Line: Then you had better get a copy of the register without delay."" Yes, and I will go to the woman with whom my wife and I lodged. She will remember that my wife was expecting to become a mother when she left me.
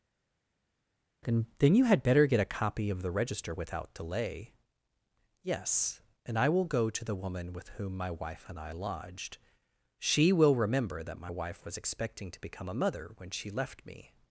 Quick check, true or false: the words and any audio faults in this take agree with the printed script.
false